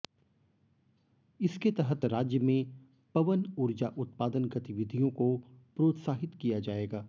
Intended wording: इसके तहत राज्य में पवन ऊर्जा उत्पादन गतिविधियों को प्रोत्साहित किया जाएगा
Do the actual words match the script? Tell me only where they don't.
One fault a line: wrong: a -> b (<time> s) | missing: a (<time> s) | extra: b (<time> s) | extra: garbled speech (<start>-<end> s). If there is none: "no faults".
no faults